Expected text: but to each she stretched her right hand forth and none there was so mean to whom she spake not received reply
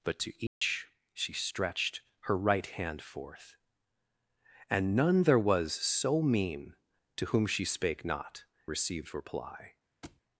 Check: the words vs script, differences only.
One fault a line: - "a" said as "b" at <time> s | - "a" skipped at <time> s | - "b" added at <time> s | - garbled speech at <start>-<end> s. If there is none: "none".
none